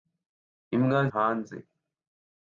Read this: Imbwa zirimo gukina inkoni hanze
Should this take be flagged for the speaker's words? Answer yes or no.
yes